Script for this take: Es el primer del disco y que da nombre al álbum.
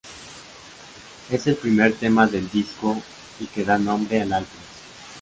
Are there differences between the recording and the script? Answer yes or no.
yes